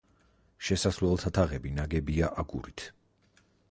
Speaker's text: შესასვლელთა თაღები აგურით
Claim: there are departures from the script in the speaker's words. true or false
true